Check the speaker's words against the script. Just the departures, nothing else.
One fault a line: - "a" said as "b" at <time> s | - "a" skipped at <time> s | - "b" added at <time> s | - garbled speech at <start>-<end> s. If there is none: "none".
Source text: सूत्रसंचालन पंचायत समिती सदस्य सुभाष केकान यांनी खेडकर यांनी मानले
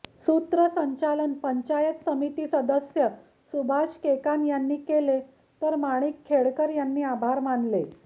- "केले तर माणिक" added at 4.8 s
- "आभार" added at 7.1 s